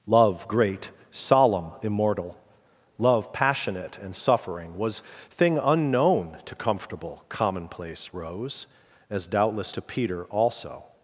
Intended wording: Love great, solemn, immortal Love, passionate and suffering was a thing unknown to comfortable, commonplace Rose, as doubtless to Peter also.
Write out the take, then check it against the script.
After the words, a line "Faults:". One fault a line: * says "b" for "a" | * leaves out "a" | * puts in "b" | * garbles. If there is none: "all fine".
Love great, solemn, immortal Love, passionate and suffering was thing unknown to comfortable, commonplace Rose, as doubtless to Peter also.
Faults:
* leaves out "a"